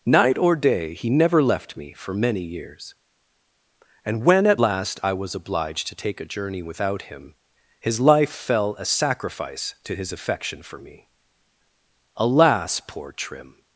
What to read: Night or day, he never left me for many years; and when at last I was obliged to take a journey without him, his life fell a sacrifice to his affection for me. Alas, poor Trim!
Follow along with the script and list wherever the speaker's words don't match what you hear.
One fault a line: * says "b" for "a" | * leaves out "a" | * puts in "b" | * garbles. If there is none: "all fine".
all fine